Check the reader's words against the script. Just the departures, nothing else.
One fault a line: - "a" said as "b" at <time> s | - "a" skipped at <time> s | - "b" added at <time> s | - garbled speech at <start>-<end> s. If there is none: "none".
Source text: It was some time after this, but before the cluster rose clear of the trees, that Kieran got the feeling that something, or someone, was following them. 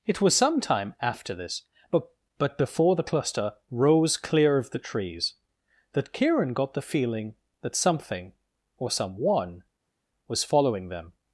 - "but" added at 2.4 s